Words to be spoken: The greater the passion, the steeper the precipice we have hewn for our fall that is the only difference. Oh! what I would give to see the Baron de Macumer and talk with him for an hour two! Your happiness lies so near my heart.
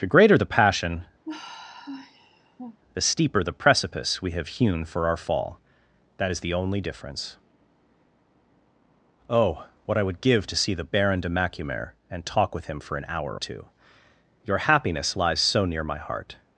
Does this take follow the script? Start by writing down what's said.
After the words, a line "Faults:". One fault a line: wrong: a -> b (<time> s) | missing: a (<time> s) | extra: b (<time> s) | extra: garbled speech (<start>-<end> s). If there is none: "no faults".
The greater the passion, the steeper the precipice we have hewn for our fall that is the only difference. Oh! what I would give to see the Baron de Macumer and talk with him for an hour two! Your happiness lies so near my heart.
Faults:
no faults